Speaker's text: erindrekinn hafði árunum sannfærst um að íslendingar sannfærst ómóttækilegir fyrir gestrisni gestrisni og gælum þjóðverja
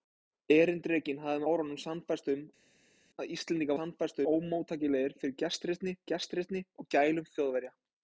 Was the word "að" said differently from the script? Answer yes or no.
no